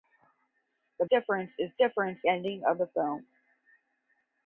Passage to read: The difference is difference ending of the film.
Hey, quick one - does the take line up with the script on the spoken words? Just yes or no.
yes